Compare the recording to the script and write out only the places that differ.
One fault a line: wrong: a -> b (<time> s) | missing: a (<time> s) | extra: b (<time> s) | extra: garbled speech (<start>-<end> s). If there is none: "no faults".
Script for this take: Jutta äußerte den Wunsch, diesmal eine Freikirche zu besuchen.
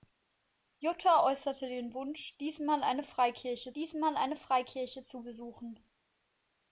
extra: diesmal eine Freikirche (3.7 s)